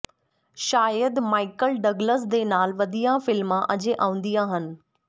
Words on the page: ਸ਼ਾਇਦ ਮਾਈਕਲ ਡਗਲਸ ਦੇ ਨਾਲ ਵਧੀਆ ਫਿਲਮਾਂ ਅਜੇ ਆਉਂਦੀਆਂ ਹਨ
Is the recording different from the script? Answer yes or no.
no